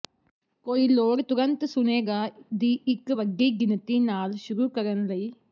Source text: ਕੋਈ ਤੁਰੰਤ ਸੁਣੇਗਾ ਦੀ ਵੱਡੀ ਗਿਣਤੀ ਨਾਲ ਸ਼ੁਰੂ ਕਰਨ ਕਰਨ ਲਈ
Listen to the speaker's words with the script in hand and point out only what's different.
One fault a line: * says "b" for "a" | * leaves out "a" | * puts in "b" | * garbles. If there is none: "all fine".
* puts in "ਲੋੜ"
* puts in "ਇੱਕ"
* leaves out "ਕਰਨ"